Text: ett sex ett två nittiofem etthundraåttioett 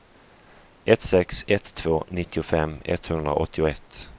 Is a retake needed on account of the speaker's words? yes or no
no